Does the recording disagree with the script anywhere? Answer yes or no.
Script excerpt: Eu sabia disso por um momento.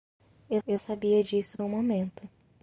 yes